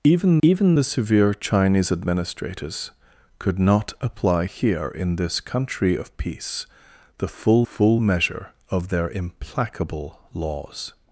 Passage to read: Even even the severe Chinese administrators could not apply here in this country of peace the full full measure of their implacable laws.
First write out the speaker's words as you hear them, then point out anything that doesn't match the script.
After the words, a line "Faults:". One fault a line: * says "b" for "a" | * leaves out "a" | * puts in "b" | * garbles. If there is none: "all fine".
Even even the severe Chinese administrators could not apply here in this country of peace the full full measure of their implacable laws.
Faults:
all fine